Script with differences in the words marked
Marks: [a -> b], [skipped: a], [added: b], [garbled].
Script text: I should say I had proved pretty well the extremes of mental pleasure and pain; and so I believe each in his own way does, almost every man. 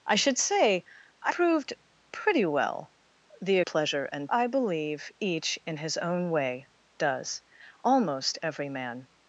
I should say I [skipped: had] proved pretty well the [skipped: extremes of mental] pleasure and [skipped: pain; and so] I believe each in his own way does, almost every man.